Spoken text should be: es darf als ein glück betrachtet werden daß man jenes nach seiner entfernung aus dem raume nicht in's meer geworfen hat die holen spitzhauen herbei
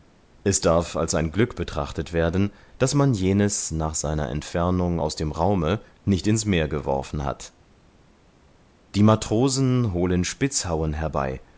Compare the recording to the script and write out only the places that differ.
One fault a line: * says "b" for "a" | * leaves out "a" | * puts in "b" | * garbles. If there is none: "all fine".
* puts in "matrosen"